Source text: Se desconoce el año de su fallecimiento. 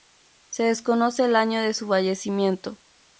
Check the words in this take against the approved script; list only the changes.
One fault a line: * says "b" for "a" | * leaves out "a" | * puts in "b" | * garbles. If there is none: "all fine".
all fine